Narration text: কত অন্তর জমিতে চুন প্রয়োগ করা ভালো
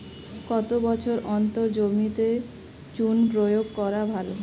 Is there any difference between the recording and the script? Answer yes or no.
yes